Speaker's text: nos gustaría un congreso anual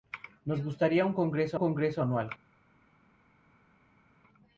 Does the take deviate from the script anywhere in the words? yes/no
yes